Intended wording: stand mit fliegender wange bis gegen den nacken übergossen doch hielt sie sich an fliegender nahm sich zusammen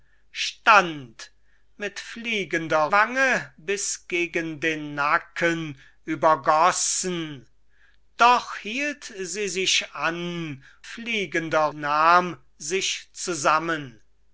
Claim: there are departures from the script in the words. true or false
false